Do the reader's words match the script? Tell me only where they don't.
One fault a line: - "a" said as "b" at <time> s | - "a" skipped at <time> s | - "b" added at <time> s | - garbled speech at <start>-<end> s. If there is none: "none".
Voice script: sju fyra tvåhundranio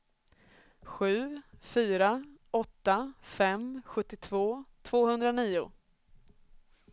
- "åtta fem sjuttiotvå" added at 2.5 s